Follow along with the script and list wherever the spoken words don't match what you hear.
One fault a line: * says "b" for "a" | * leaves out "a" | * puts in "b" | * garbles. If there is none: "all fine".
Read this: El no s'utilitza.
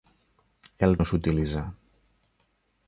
all fine